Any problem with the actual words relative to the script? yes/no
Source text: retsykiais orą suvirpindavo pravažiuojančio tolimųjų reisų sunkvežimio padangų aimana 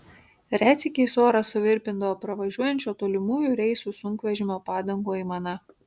no